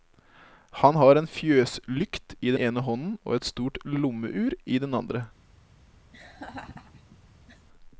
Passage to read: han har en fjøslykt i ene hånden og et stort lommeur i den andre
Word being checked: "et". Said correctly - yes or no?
yes